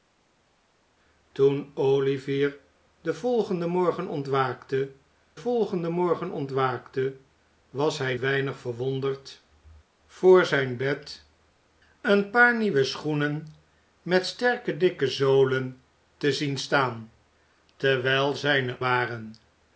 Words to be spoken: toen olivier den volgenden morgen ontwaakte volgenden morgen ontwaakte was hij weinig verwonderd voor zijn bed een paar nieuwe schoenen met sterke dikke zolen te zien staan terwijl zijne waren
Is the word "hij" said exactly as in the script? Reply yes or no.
yes